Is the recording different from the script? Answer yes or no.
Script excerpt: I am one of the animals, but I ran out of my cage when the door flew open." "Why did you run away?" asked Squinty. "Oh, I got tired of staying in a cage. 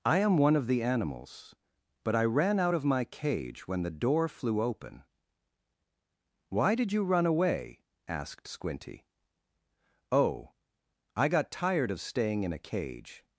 no